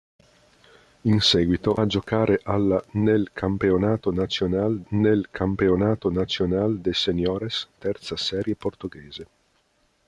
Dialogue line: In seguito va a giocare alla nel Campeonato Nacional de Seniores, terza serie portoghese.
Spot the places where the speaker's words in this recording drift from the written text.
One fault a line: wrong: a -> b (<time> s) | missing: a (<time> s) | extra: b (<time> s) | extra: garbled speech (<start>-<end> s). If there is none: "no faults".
missing: va (1.8 s)
extra: nel Campeonato Nacional (4.9 s)